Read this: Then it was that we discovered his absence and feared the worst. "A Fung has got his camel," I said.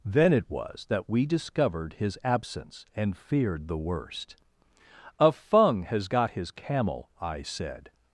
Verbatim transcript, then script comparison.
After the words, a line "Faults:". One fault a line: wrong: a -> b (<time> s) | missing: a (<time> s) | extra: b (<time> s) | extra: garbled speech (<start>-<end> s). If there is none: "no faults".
Then it was that we discovered his absence and feared the worst. "A Fung has got his camel," I said.
Faults:
no faults